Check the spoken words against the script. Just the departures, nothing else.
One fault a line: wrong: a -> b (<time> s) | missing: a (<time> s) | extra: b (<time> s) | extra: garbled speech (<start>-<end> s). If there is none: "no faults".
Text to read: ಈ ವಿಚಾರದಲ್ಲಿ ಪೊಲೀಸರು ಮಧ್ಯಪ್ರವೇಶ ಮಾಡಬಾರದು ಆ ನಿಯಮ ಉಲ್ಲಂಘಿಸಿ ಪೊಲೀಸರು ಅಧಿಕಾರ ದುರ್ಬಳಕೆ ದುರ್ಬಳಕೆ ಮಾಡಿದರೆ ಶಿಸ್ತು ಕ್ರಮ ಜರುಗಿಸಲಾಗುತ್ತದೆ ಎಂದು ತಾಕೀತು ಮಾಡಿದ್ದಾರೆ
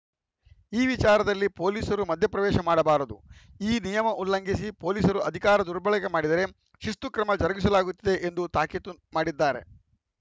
wrong: ಆ -> ಈ (3.6 s)
missing: ದುರ್ಬಳಕೆ (6.1 s)